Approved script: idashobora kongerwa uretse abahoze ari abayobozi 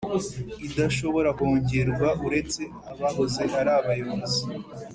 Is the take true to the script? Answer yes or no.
yes